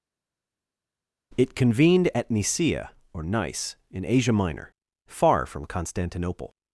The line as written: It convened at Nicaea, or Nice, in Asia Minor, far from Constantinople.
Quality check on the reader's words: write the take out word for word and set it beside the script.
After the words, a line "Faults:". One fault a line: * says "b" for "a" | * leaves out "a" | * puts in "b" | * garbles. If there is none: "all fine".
It convened at Nicaea, or Nice, in Asia Minor, far from Constantinople.
Faults:
all fine